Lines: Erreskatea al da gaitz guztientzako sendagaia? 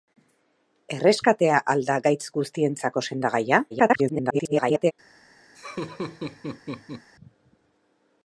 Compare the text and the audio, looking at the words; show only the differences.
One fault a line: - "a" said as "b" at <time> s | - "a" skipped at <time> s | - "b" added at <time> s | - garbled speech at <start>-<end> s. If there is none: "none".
- garbled speech at 3.7-4.9 s